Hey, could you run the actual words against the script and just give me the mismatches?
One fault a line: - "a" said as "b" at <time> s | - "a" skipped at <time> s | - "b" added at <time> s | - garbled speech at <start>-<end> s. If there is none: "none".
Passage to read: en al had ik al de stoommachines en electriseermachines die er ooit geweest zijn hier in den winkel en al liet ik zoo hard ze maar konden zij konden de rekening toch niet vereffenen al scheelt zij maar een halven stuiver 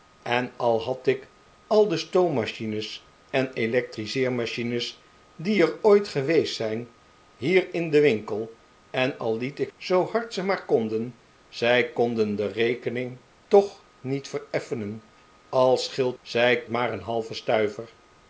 none